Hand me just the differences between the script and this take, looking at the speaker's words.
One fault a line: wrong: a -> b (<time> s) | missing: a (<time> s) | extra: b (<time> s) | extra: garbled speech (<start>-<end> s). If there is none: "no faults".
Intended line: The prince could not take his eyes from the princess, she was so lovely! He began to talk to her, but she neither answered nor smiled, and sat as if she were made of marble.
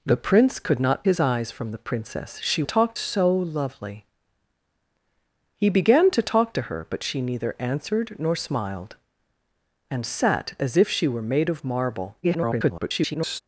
missing: take (1.1 s)
wrong: was -> talk (2.6 s)
extra: garbled speech (12.2-13.4 s)